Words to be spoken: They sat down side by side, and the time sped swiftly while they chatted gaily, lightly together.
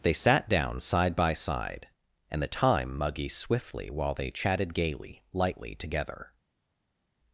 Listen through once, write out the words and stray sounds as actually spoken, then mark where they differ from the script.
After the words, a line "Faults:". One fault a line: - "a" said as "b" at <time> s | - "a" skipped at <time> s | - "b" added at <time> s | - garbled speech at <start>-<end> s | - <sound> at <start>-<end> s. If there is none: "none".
They sat down side by side, and the time muggy swiftly while they chatted gaily, lightly together.
Faults:
- "sped" said as "muggy" at 3.0 s